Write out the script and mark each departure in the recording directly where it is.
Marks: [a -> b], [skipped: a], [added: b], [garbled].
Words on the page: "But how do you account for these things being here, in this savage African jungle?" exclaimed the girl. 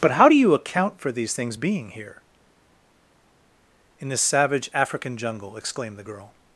"But how do you account for these things being here, in this savage African jungle?" exclaimed the girl.